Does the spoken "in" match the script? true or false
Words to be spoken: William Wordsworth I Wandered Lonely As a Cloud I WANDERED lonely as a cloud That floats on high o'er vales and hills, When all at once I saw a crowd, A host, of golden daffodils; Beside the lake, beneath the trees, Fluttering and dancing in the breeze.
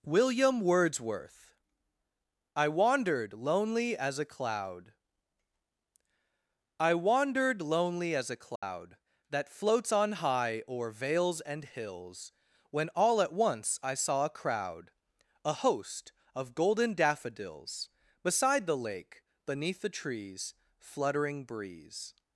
false